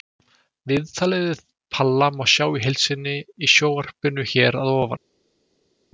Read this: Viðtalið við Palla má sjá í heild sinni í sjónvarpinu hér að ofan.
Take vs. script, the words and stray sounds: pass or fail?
pass